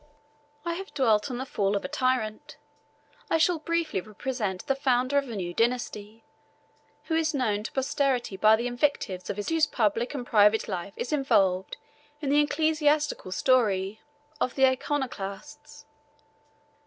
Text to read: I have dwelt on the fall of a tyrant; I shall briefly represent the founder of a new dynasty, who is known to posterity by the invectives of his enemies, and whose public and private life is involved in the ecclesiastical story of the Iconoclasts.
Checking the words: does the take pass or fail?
fail